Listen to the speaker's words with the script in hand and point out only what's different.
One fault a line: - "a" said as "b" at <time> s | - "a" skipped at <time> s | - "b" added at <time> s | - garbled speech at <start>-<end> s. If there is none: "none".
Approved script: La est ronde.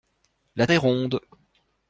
none